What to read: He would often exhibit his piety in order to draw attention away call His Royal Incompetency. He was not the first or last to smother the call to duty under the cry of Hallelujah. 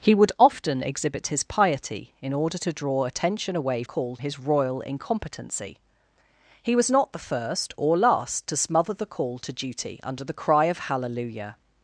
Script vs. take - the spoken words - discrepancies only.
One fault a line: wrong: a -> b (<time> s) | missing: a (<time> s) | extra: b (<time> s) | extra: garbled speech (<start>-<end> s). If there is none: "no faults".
no faults